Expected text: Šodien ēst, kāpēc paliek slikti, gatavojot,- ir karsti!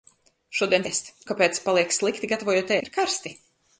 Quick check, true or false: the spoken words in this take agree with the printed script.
true